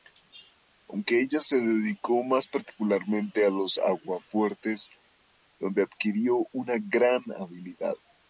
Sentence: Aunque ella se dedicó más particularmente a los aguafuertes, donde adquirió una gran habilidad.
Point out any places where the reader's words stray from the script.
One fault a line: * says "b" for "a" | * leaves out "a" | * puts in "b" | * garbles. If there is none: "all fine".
all fine